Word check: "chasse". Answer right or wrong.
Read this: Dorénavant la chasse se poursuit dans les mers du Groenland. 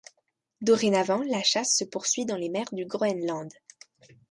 right